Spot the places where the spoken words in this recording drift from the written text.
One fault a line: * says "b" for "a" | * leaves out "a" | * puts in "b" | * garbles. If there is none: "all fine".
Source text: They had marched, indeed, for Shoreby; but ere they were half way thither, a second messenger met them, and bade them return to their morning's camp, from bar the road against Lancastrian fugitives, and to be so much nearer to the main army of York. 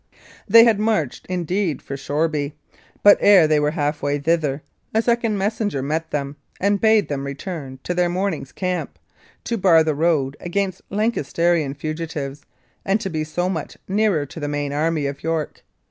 * says "to" for "from"